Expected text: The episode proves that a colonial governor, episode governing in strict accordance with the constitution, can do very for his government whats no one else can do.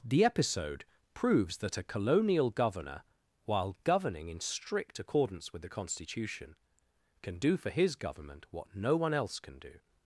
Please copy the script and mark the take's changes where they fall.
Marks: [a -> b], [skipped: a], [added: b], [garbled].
The episode proves that a colonial governor, [episode -> while] governing in strict accordance with the constitution, can do [skipped: very] for his government [whats -> what] no one else can do.